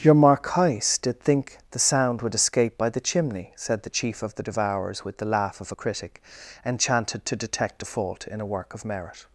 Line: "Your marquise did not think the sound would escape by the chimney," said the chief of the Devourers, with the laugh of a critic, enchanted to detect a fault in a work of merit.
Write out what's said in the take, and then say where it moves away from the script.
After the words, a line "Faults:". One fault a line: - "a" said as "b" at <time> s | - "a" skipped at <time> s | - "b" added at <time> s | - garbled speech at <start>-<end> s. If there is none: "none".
"Your marquise did think the sound would escape by the chimney," said the chief of the Devourers, with the laugh of a critic, enchanted to detect a fault in a work of merit.
Faults:
- "not" skipped at 1.2 s